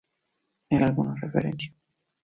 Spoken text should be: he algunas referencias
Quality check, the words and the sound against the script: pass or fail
pass